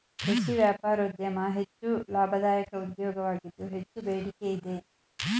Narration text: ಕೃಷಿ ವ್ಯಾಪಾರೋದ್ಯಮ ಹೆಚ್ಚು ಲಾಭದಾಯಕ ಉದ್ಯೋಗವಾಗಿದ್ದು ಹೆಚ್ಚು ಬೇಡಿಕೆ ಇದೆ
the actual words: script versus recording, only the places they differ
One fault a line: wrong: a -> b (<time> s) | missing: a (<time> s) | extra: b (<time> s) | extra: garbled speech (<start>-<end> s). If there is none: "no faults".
no faults